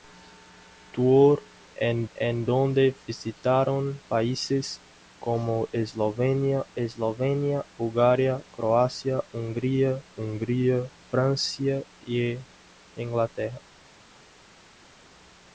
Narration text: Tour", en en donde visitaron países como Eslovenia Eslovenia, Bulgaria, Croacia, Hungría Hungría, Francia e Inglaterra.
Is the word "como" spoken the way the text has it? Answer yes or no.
yes